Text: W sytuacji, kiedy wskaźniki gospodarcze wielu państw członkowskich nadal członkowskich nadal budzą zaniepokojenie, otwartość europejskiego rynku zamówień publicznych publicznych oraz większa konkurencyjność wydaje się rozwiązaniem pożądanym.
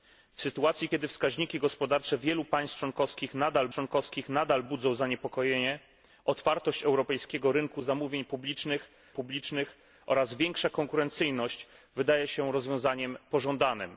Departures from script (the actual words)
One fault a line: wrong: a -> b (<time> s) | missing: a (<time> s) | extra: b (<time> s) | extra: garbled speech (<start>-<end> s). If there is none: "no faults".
no faults